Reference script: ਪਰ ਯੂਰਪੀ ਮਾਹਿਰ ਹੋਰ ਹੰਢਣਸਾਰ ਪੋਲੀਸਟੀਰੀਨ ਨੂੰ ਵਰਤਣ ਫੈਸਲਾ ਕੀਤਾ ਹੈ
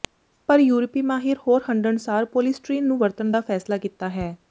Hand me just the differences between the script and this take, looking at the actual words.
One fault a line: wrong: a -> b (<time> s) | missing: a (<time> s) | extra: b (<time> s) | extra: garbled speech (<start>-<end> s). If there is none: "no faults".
extra: ਦਾ (3.3 s)